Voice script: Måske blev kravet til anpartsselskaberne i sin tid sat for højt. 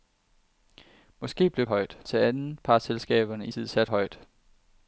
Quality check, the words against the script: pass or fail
fail